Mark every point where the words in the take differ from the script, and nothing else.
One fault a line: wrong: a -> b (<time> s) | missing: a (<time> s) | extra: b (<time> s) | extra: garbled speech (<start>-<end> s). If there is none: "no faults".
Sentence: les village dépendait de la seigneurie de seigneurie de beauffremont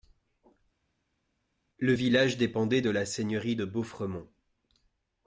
wrong: les -> le (1.8 s)
missing: seigneurie de (3.7 s)